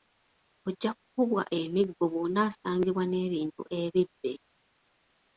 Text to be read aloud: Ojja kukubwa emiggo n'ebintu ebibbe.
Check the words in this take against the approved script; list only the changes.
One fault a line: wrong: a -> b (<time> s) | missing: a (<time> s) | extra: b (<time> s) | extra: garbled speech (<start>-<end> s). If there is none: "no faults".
extra: bw'onaasangibwa (2.1 s)